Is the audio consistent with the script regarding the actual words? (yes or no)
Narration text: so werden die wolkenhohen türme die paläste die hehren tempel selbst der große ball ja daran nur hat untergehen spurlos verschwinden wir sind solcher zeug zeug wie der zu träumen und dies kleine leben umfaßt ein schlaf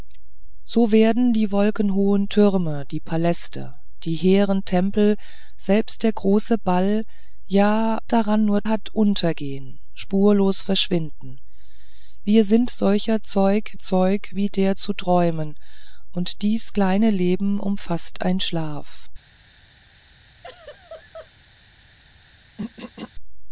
yes